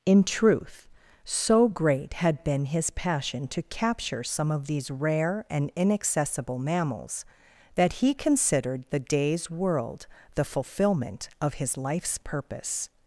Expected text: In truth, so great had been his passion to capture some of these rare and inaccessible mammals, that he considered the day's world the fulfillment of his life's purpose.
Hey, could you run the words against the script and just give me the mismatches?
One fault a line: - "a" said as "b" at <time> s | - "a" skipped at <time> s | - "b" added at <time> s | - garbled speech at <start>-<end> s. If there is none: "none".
none